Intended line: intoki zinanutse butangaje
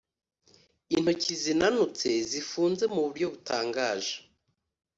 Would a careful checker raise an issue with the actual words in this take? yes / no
yes